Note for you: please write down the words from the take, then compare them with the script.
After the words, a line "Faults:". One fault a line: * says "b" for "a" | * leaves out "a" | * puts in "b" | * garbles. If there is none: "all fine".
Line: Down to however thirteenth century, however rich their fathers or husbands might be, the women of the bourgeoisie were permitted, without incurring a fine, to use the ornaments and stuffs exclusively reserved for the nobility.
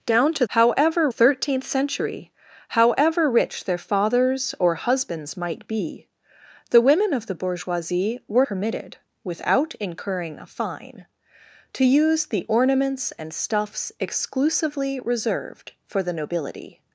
Down to however thirteenth century, however rich their fathers or husbands might be, the women of the bourgeoisie were permitted, without incurring a fine, to use the ornaments and stuffs exclusively reserved for the nobility.
Faults:
all fine